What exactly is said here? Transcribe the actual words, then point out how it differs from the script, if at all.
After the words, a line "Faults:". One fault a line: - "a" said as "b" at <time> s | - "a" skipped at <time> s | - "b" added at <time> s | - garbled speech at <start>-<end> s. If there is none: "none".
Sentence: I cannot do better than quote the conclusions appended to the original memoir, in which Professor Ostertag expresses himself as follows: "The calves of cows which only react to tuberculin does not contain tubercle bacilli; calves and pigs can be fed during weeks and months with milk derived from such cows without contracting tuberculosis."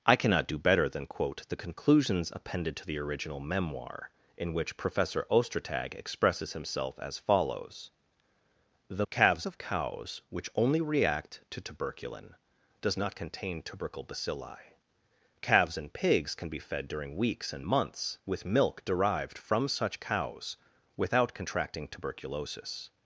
I cannot do better than quote the conclusions appended to the original memoir, in which Professor Ostertag expresses himself as follows: "The calves of cows which only react to tuberculin does not contain tubercle bacilli; calves and pigs can be fed during weeks and months with milk derived from such cows without contracting tuberculosis."
Faults:
none